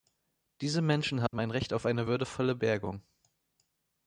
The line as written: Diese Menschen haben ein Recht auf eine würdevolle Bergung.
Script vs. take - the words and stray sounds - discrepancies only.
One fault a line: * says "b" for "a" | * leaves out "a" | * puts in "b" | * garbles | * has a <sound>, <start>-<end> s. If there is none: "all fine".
* has a dropout, 1.3-1.3 s